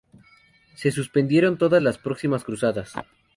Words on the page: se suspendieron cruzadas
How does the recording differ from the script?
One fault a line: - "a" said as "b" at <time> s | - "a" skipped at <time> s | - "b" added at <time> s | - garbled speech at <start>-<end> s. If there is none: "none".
- "todas las próximas" added at 1.6 s